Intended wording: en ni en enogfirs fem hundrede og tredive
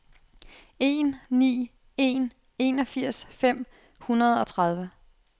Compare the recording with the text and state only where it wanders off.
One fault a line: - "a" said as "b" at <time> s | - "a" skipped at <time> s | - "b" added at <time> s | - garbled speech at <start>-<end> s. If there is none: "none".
none